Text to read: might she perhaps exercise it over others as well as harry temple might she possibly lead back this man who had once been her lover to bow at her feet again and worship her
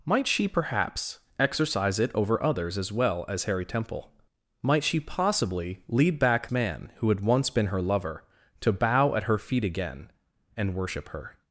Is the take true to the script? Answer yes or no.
no